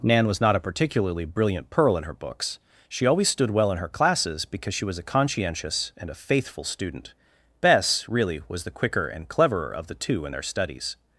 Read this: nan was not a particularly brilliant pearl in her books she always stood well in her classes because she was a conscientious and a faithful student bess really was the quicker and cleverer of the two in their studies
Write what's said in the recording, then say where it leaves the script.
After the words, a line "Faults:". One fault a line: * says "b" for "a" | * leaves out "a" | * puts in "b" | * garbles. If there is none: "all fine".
nan was not a particularly brilliant pearl in her books she always stood well in her classes because she was a conscientious and a faithful student bess really was the quicker and cleverer of the two in their studies
Faults:
all fine